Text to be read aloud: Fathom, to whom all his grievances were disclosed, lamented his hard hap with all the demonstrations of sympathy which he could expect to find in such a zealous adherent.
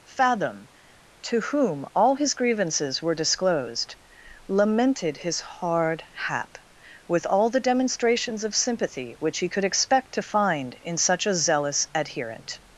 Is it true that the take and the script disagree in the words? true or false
false